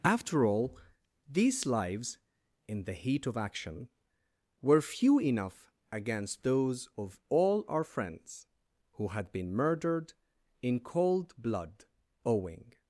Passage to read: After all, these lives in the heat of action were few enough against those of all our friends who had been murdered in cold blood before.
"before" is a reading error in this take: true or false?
true